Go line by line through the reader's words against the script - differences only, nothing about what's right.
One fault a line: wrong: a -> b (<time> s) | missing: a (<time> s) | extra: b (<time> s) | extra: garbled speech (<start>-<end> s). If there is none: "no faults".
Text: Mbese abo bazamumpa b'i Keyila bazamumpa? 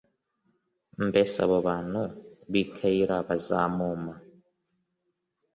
wrong: bazamumpa -> bantu (1.7 s)